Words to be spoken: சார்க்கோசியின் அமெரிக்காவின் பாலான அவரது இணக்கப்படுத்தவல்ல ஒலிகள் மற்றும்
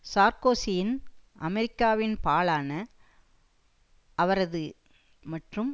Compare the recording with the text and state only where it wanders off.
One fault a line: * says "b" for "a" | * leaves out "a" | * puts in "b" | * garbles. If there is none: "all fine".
* leaves out "இணக்கப்படுத்தவல்ல ஒலிகள்"